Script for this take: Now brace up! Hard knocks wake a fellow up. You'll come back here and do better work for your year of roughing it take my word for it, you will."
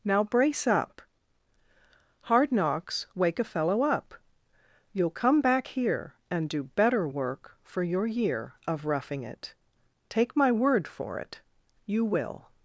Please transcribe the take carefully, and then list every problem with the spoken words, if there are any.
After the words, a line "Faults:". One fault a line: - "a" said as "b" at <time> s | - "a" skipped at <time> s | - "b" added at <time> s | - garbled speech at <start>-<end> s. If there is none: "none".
Now brace up! Hard knocks wake a fellow up. You'll come back here and do better work for your year of roughing it take my word for it, you will."
Faults:
none